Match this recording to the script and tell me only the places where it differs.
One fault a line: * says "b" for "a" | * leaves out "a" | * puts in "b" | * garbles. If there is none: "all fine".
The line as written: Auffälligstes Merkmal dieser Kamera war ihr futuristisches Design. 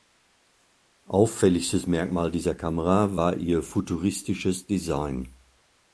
all fine